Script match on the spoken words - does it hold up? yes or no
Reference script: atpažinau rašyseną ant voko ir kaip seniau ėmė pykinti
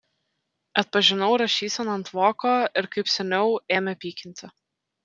yes